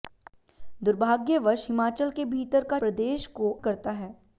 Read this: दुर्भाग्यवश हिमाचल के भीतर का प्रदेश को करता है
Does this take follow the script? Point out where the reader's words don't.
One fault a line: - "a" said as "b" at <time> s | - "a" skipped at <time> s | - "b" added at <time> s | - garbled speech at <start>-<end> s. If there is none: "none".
none